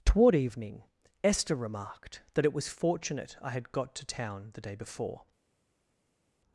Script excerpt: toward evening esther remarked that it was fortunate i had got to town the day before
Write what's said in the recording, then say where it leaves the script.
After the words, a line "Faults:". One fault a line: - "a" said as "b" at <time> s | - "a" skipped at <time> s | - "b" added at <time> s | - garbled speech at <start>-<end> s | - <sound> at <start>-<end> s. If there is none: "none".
toward evening esther remarked that it was fortunate i had got to town the day before
Faults:
none